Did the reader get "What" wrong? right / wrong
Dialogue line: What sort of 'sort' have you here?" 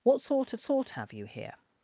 right